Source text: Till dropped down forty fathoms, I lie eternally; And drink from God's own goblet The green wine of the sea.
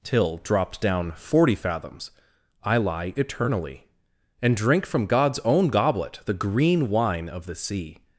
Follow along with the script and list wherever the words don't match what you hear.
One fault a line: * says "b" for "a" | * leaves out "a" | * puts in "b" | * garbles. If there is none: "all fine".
all fine